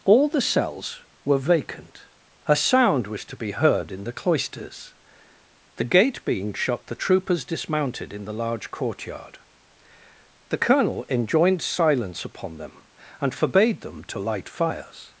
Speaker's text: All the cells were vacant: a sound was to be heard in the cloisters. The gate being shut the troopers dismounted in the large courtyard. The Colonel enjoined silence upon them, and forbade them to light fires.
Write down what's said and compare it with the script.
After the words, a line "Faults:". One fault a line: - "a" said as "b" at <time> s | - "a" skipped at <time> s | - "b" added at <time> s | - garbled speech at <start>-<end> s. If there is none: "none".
All the cells were vacant: a sound was to be heard in the cloisters. The gate being shut the troopers dismounted in the large courtyard. The Colonel enjoined silence upon them, and forbade them to light fires.
Faults:
none